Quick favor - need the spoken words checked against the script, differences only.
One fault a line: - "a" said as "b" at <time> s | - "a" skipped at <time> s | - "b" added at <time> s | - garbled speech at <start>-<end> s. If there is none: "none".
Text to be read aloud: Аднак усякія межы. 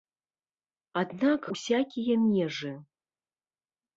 none